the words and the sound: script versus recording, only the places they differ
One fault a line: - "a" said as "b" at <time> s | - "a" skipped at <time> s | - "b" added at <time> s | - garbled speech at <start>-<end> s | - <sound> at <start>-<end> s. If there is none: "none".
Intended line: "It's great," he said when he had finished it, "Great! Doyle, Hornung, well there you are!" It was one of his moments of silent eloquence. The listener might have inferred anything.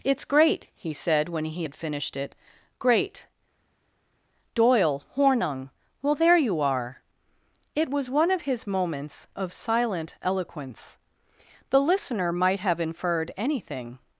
none